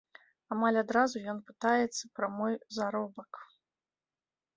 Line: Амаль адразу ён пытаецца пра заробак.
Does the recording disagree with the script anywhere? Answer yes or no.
yes